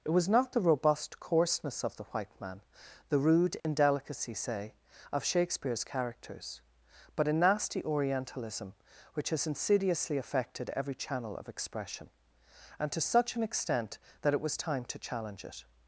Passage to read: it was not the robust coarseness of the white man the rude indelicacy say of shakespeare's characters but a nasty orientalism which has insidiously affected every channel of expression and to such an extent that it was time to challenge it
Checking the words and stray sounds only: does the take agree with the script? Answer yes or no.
no